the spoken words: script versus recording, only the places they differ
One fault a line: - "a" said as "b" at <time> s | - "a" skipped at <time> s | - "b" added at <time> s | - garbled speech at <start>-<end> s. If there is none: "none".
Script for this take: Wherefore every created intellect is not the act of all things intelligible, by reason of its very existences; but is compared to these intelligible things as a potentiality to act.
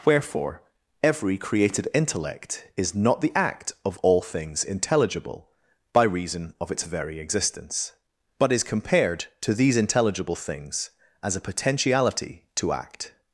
- "existences" said as "existence" at 7.2 s